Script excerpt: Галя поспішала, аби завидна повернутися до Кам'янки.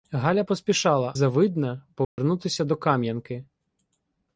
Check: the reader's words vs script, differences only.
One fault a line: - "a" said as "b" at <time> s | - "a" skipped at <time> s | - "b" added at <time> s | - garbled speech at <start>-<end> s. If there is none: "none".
- "аби" skipped at 1.1 s